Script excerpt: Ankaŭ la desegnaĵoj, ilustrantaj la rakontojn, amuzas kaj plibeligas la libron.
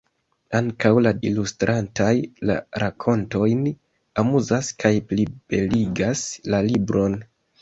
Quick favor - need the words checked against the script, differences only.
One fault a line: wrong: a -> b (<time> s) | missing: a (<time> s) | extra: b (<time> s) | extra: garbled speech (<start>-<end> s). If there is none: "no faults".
missing: desegnaĵoj (1.1 s)